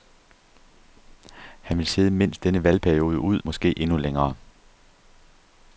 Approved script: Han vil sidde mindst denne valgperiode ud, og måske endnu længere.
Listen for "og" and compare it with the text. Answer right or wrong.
wrong